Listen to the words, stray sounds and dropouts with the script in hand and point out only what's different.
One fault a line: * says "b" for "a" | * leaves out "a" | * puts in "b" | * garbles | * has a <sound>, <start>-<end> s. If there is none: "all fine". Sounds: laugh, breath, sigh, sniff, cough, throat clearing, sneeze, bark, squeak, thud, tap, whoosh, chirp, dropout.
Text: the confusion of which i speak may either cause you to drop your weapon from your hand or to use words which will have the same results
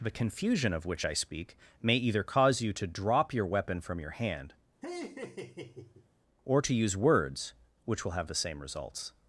* has a laugh, 4.8-6.1 s